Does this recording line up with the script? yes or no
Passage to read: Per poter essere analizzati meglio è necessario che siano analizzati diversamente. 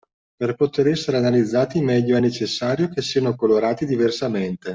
no